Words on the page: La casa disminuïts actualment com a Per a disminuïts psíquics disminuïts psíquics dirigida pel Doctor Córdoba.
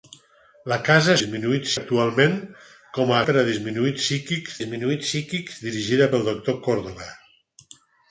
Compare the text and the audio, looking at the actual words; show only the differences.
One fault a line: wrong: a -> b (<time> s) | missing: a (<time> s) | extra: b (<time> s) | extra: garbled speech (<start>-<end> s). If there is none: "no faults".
no faults